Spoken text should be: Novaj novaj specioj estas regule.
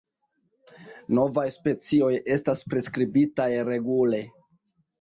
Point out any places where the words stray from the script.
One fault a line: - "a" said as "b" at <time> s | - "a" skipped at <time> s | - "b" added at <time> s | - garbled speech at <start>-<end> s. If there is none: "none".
- "novaj" skipped at 1.4 s
- "priskribitaj" added at 2.7 s